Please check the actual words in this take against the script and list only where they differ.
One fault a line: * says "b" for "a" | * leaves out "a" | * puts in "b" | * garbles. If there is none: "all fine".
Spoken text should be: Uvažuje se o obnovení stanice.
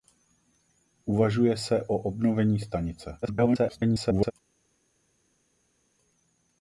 * garbles